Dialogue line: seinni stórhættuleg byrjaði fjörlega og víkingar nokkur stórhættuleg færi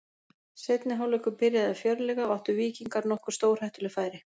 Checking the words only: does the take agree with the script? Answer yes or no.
no